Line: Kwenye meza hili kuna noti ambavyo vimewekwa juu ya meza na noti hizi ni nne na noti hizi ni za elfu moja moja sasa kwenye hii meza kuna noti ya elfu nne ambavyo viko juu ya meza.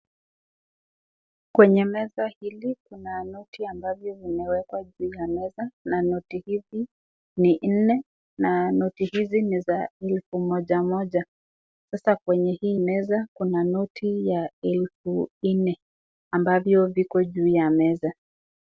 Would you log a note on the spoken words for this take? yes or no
no